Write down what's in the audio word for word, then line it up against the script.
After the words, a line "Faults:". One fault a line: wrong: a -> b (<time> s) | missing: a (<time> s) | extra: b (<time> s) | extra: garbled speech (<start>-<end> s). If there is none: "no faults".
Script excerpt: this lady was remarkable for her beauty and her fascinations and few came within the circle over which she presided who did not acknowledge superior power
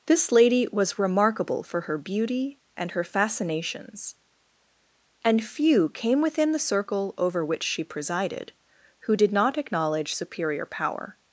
this lady was remarkable for her beauty and her fascinations and few came within the circle over which she presided who did not acknowledge superior power
Faults:
no faults